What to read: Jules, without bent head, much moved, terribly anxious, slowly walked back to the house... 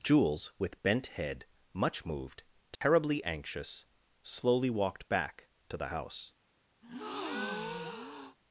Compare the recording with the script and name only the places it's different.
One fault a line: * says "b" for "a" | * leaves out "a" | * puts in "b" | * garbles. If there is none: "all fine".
* says "with" for "without"